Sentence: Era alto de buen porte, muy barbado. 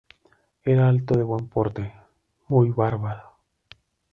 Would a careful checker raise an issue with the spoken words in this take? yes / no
no